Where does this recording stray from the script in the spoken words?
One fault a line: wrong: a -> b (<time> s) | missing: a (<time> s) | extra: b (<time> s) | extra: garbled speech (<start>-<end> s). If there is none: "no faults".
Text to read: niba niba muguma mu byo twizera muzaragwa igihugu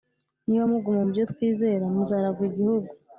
missing: niba (0.7 s)